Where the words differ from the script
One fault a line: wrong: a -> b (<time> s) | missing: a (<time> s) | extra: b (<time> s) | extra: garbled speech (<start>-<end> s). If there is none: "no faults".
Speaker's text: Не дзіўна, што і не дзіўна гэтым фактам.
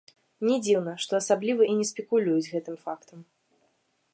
extra: асабліва (1.2 s)
wrong: дзіўна -> спекулююць (1.9 s)